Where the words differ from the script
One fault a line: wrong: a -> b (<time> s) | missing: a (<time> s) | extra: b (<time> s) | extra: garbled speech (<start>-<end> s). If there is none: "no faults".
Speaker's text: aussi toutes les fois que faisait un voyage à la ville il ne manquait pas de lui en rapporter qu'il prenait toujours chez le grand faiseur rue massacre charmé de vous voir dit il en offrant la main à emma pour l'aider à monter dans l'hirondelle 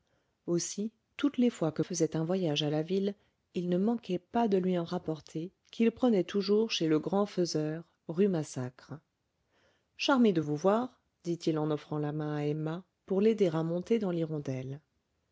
no faults